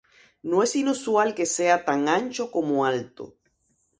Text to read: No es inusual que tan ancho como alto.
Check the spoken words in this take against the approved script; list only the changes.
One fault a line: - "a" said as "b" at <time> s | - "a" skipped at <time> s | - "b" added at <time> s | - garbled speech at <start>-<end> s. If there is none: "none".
- "sea" added at 1.4 s